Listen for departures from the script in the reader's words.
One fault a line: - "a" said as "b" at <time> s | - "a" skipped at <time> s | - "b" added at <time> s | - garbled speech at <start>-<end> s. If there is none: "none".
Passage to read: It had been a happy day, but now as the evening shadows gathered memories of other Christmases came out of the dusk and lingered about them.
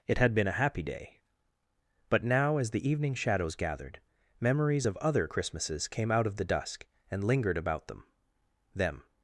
- "them" added at 8.7 s